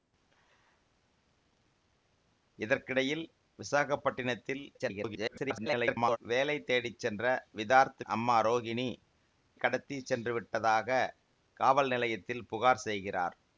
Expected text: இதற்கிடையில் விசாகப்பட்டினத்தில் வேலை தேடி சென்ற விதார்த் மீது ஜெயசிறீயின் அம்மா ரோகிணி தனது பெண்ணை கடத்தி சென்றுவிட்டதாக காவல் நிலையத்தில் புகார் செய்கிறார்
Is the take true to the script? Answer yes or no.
no